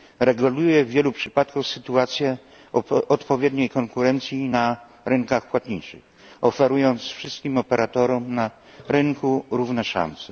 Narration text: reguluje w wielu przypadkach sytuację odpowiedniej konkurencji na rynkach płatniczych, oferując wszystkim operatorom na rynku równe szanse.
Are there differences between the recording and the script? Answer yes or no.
no